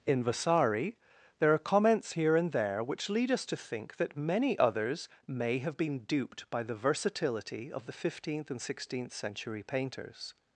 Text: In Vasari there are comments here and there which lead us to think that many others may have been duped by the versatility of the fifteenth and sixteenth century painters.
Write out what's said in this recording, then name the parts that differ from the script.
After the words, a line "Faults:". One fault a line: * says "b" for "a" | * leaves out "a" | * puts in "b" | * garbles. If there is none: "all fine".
In Vasari there are comments here and there which lead us to think that many others may have been duped by the versatility of the fifteenth and sixteenth century painters.
Faults:
all fine